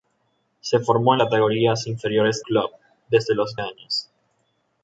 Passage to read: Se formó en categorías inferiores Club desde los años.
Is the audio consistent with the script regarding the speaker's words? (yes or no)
yes